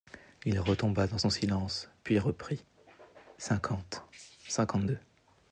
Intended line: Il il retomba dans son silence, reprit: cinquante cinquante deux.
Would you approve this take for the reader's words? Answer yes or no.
no